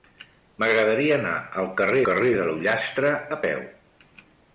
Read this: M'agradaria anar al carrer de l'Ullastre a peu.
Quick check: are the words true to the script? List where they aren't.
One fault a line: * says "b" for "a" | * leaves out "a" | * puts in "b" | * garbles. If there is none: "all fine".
* puts in "carrer"